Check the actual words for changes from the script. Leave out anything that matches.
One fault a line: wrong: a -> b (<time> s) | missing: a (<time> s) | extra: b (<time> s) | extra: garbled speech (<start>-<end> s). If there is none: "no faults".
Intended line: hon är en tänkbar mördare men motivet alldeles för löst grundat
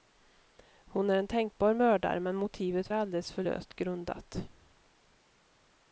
no faults